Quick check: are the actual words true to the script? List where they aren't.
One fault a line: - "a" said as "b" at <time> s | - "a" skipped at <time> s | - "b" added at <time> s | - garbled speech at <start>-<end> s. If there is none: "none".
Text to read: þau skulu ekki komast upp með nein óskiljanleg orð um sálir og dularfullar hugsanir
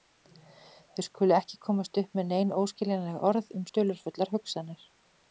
- "sálir" skipped at 3.7 s